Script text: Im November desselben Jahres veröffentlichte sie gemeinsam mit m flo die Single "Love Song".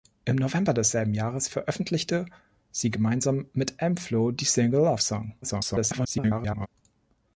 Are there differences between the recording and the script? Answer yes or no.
yes